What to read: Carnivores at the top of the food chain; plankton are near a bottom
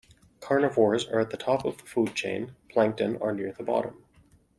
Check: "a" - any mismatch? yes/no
yes